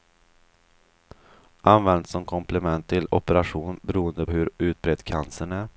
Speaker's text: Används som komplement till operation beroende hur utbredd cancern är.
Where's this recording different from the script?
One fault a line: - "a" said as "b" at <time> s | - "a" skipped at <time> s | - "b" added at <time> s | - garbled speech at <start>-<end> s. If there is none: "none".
none